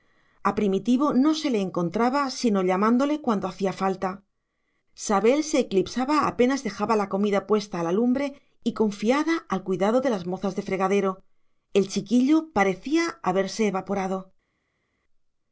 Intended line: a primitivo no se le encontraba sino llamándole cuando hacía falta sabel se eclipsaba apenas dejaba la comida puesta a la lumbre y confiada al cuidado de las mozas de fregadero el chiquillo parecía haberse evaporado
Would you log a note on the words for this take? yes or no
no